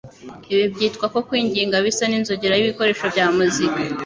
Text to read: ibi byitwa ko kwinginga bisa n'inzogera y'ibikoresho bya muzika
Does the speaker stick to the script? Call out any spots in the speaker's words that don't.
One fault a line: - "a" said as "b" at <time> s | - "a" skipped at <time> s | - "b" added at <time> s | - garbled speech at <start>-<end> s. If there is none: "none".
none